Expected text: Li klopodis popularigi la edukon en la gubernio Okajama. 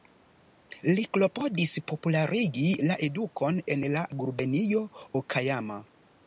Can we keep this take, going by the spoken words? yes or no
yes